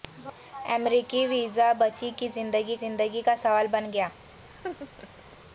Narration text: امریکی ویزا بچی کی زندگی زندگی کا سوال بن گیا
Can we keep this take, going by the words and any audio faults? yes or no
no